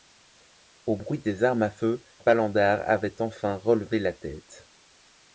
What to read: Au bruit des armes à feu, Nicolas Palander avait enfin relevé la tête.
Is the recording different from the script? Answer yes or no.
yes